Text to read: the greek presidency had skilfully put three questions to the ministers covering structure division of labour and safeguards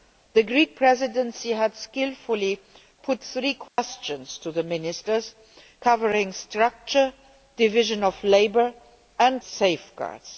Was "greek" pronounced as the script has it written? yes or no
yes